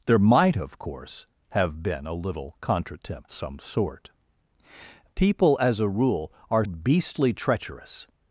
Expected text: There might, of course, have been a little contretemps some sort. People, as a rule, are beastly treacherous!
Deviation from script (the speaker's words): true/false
false